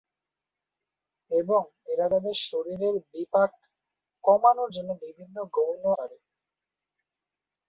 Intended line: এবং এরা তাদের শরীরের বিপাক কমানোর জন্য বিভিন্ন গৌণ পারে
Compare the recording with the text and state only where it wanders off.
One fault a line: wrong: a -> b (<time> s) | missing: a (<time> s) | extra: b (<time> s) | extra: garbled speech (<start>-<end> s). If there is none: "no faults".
no faults